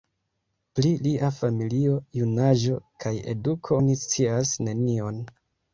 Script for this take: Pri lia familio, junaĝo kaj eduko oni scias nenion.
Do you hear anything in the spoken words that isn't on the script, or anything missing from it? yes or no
no